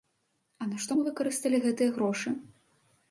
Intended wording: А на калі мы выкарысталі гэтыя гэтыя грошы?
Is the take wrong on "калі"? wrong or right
wrong